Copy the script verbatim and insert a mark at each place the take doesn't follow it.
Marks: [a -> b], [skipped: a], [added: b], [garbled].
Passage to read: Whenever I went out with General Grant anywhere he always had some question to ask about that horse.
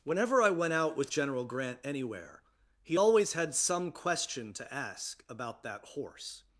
Whenever I went out with General Grant anywhere he always had some question to ask about that horse.